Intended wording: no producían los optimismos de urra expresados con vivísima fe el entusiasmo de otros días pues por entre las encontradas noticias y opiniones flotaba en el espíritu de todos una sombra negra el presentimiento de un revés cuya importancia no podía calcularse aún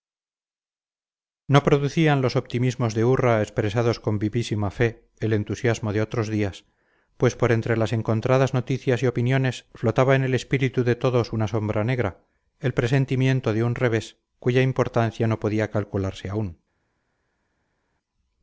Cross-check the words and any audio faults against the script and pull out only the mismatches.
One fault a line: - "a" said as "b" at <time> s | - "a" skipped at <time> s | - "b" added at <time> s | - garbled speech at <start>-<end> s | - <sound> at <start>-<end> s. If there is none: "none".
none